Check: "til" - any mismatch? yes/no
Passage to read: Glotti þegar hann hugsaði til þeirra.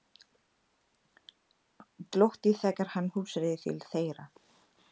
no